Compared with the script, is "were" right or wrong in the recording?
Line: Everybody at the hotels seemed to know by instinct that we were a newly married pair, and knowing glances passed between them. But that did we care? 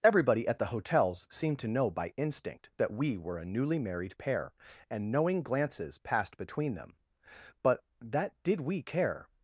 right